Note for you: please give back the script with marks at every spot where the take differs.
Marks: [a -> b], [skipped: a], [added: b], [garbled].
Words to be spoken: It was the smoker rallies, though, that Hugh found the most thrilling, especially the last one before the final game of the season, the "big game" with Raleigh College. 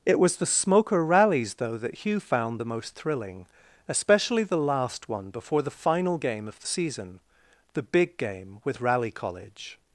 It was the smoker rallies, though, that Hugh found the most thrilling, especially the last one before the final game of the season, the "big game" with Raleigh College.